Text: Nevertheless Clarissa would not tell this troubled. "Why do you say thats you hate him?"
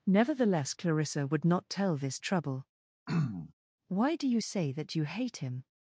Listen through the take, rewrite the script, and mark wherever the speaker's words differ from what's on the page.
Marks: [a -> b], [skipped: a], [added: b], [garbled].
Nevertheless Clarissa would not tell this [troubled. -> trouble] "Why do you say [thats -> that] you hate him?"